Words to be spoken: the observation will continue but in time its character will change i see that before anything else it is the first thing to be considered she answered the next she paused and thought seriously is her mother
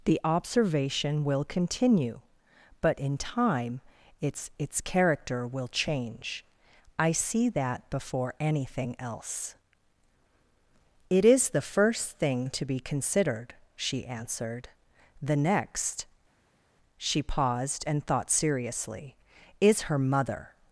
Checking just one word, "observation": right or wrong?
right